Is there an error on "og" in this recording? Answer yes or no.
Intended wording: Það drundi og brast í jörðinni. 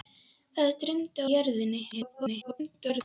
yes